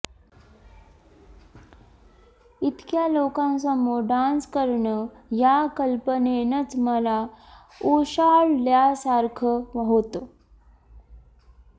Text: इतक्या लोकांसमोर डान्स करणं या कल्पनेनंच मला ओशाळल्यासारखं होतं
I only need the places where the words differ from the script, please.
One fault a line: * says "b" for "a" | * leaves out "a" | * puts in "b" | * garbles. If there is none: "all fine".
all fine